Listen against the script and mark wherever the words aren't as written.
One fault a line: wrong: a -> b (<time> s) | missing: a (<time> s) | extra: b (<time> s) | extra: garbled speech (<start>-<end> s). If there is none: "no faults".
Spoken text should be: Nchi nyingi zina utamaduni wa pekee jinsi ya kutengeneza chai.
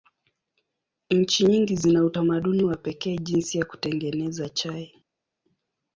no faults